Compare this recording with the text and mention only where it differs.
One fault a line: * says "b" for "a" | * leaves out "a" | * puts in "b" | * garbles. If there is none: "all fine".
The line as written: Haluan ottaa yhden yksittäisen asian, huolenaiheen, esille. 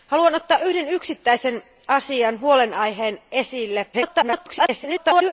* garbles